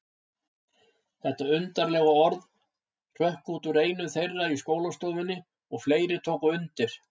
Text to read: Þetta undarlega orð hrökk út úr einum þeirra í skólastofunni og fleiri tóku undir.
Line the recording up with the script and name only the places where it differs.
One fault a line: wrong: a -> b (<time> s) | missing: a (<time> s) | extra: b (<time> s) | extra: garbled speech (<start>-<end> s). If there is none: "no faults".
no faults